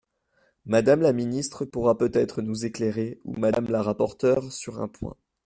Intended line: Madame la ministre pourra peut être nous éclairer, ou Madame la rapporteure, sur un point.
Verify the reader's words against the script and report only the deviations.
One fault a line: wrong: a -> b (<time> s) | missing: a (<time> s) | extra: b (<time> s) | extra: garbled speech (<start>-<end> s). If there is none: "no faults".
no faults